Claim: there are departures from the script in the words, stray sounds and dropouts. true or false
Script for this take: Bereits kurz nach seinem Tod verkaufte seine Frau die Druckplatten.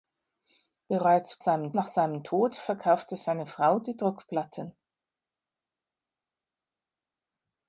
true